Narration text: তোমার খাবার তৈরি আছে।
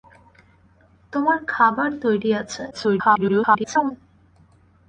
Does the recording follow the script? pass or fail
fail